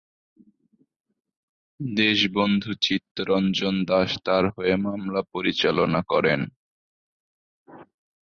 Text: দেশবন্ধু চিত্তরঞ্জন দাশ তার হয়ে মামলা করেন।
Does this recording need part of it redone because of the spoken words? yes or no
yes